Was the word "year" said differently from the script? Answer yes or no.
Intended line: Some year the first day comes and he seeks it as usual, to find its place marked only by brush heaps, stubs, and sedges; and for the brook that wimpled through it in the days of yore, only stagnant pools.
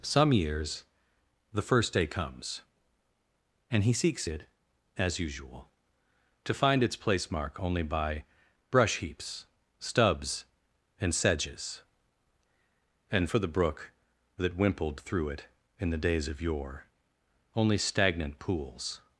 yes